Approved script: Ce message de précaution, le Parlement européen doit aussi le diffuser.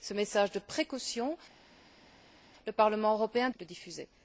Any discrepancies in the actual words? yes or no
yes